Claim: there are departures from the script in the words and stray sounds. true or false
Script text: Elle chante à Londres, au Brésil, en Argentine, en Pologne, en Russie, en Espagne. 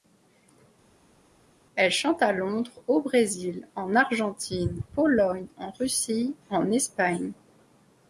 true